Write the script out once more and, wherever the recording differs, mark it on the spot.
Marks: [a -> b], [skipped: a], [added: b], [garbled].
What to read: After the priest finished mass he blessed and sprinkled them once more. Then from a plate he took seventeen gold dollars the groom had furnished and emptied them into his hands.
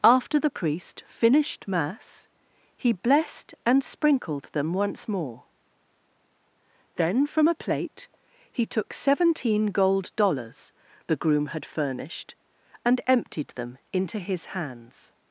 After the priest finished mass he blessed and sprinkled them once more. Then from a plate he took seventeen gold dollars the groom had furnished and emptied them into his hands.